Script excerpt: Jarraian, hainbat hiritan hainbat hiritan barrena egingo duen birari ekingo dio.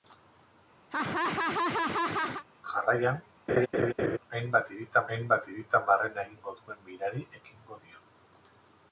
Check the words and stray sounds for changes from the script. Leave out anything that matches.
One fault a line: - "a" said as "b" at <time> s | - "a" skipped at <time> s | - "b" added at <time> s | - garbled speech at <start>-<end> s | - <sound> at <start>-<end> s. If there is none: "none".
- laugh at 0.9-2.4 s
- laugh at 3.5-4.2 s